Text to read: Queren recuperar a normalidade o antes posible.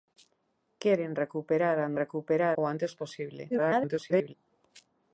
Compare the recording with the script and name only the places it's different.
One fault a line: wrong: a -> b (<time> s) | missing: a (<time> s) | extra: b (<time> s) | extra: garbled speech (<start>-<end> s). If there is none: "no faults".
wrong: normalidade -> recuperar (2.0 s)
extra: garbled speech (3.5-4.3 s)